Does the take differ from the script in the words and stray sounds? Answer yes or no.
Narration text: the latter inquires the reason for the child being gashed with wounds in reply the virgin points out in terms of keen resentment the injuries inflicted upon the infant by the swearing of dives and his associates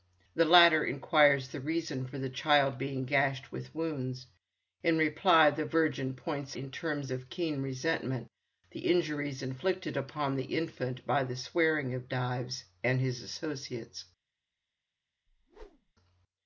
yes